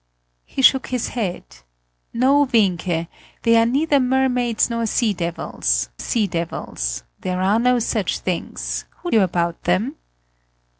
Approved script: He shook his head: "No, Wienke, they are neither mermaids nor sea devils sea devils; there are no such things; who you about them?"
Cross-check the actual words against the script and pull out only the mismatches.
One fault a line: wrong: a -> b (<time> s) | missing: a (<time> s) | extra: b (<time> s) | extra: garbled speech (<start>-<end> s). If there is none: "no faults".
no faults